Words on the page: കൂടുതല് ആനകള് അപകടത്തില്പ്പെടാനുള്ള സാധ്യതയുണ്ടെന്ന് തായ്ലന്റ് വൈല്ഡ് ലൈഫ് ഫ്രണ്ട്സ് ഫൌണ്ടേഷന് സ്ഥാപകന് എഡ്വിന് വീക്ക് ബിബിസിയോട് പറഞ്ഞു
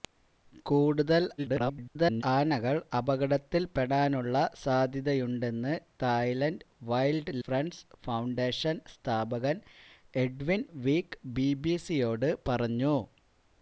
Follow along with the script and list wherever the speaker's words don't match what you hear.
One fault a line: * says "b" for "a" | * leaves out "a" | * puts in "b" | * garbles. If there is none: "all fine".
* garbles
* leaves out "ലൈഫ്"